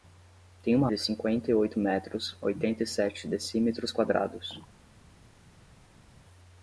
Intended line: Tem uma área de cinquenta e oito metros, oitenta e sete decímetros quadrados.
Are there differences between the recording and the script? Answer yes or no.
yes